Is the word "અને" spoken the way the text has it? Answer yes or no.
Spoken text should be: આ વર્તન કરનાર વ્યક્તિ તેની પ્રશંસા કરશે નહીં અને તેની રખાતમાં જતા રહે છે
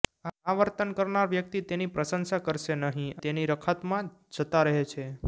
no